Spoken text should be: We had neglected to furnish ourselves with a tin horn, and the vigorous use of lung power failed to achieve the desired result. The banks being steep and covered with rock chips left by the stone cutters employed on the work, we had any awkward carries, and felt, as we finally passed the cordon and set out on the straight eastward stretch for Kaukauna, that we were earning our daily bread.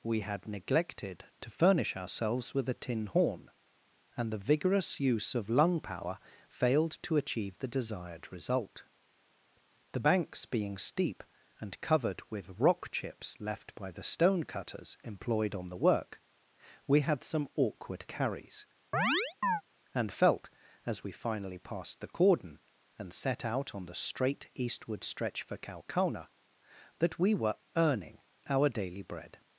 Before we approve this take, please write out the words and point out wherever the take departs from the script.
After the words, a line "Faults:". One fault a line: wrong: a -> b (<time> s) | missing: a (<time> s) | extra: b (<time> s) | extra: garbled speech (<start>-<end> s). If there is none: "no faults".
We had neglected to furnish ourselves with a tin horn, and the vigorous use of lung power failed to achieve the desired result. The banks being steep and covered with rock chips left by the stone cutters employed on the work, we had some awkward carries, and felt, as we finally passed the cordon and set out on the straight eastward stretch for Kaukauna, that we were earning our daily bread.
Faults:
wrong: any -> some (17.2 s)